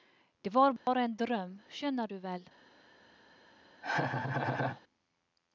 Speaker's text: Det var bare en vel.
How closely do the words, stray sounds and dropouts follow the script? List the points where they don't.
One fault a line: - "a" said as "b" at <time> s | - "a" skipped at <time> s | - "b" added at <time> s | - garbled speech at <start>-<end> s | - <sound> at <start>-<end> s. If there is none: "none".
- dropout at 0.8-0.9 s
- "drøm skjønner du" added at 1.2 s
- laugh at 3.8-4.8 s